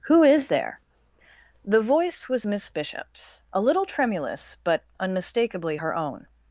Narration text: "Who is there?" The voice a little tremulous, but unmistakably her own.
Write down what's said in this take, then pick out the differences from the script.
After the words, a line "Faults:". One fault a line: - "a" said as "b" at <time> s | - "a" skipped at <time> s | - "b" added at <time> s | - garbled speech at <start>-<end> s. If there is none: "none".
"Who is there?" The voice was Miss Bishop's, a little tremulous, but unmistakably her own.
Faults:
- "was Miss Bishop's" added at 2.3 s